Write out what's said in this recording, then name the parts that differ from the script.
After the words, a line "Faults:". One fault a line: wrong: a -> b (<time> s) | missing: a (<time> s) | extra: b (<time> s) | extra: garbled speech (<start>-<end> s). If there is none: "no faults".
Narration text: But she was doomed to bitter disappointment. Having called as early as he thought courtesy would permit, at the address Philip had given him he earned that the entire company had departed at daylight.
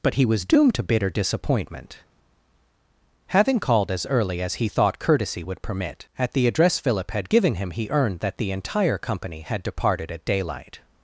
But he was doomed to bitter disappointment. Having called as early as he thought courtesy would permit, at the address Philip had given him he earned that the entire company had departed at daylight.
Faults:
wrong: she -> he (0.1 s)